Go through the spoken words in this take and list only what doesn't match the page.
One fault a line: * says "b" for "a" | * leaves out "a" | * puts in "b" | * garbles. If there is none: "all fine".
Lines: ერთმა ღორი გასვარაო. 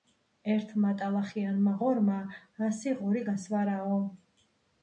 * puts in "ტალახიანმა ღორმა ასი"